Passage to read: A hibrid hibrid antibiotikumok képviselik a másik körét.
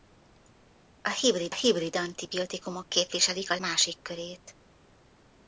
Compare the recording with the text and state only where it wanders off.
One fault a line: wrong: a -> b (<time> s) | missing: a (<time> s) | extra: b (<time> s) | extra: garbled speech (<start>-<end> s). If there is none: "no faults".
no faults